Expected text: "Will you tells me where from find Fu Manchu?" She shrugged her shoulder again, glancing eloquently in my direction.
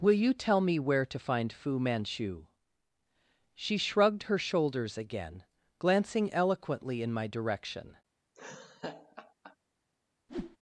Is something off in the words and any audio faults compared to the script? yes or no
yes